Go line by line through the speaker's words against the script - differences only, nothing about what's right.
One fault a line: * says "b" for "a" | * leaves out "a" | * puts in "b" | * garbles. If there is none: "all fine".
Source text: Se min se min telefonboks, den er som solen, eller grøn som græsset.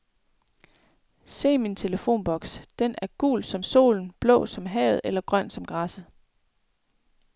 * leaves out "se min"
* puts in "gul"
* puts in "blå som havet"